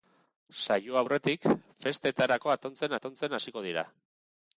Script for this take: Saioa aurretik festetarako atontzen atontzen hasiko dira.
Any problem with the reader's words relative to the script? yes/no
no